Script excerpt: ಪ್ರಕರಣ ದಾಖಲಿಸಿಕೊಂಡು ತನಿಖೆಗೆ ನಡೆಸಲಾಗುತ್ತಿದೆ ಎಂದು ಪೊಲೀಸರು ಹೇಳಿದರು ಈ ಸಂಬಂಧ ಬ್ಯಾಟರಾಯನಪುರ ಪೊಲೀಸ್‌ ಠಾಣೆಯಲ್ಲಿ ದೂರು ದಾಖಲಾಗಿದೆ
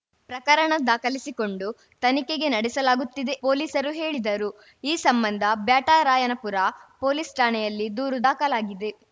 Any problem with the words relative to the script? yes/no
yes